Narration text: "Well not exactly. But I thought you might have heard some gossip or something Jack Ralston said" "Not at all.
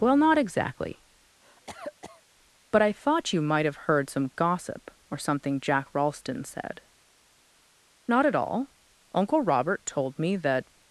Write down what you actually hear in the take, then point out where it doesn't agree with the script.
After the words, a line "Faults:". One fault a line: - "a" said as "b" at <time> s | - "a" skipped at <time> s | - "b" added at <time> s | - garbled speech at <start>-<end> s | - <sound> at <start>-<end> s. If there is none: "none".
"Well not exactly. But I thought you might have heard some gossip or something Jack Ralston said" "Not at all. Uncle Robert told me that
Faults:
- cough at 1.4-2.2 s
- "Uncle Robert told me that" added at 9.1 s